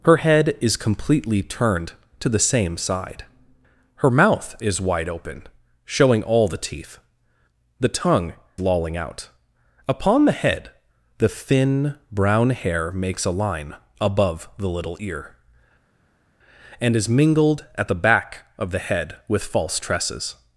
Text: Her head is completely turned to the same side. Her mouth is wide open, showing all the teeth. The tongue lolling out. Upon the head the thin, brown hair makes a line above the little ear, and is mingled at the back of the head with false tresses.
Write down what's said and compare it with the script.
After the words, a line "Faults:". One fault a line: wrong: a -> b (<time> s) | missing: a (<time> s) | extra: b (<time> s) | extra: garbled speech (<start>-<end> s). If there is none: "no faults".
Her head is completely turned to the same side. Her mouth is wide open, showing all the teeth. The tongue lolling out. Upon the head the thin, brown hair makes a line above the little ear, and is mingled at the back of the head with false tresses.
Faults:
no faults